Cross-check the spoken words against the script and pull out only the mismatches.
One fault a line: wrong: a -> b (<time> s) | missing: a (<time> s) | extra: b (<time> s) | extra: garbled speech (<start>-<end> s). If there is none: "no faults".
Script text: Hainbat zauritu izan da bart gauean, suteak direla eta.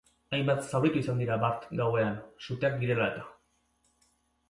wrong: da -> dira (1.2 s)